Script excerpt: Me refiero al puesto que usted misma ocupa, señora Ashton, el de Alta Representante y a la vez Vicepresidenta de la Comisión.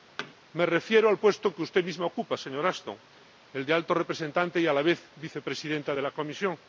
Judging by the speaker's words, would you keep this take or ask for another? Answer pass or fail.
pass